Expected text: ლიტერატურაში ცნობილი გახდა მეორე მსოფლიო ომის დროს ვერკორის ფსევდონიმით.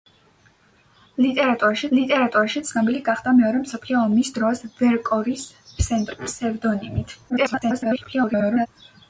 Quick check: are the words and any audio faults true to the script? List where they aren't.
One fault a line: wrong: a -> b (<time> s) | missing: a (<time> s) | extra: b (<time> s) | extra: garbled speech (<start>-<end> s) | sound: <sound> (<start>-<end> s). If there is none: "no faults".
extra: ლიტერატურაში (2.0 s)
extra: garbled speech (7.3-8.7 s)